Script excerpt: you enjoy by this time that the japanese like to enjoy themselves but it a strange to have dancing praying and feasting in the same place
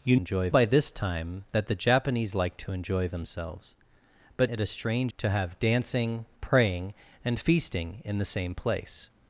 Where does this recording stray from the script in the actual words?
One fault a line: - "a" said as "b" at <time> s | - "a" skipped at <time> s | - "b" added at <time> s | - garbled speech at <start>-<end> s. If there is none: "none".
none